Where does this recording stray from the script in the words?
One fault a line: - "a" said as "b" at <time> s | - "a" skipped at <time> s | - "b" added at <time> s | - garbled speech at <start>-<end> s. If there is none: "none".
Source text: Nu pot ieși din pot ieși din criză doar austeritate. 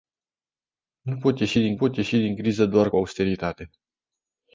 none